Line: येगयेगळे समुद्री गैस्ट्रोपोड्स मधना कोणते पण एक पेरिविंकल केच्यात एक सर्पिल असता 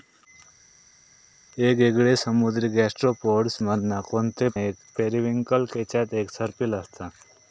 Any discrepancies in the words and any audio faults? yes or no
yes